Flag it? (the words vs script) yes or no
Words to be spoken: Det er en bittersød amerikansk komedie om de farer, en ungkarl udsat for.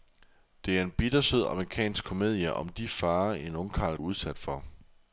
no